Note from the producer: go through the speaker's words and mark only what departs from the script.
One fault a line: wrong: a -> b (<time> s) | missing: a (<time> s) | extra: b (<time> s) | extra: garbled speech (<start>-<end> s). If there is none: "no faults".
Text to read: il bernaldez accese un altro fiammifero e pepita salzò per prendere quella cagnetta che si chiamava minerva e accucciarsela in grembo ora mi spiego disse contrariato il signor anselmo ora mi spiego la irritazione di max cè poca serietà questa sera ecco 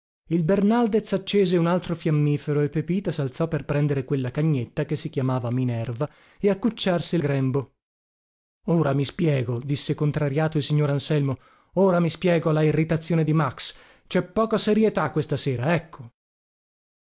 missing: in (7.2 s)